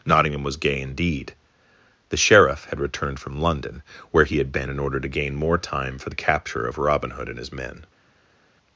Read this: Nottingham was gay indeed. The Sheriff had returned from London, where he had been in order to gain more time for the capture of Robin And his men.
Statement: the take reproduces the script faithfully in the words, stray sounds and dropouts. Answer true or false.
false